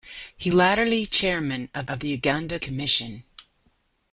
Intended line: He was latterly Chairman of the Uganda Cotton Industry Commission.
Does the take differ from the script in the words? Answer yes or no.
yes